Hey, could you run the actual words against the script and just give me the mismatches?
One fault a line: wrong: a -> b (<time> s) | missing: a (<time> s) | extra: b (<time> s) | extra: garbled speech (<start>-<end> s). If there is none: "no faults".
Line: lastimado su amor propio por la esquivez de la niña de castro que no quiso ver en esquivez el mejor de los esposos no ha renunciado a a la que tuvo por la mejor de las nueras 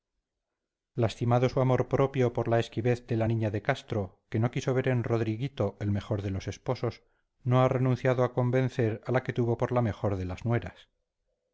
wrong: esquivez -> rodriguito (5.0 s)
extra: convencer (8.3 s)